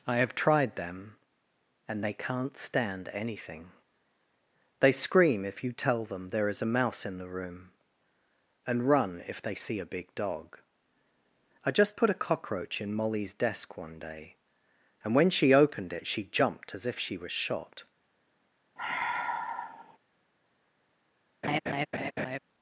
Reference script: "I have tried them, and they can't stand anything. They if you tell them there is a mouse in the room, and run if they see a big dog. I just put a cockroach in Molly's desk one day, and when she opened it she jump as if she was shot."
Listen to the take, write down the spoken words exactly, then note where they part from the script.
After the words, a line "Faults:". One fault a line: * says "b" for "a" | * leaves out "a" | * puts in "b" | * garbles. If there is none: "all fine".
"I have tried them, and they can't stand anything. They scream if you tell them there is a mouse in the room, and run if they see a big dog. I just put a cockroach in Molly's desk one day, and when she opened it she jumped as if she was shot."
Faults:
* puts in "scream"
* says "jumped" for "jump"